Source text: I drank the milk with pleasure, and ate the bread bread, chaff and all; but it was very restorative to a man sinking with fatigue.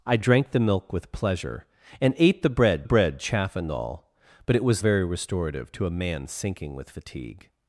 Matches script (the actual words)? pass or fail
pass